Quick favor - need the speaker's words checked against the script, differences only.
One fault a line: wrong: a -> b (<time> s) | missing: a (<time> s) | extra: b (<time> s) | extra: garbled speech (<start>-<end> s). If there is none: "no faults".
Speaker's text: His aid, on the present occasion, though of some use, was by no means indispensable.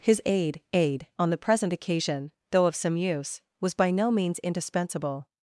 extra: aid (0.7 s)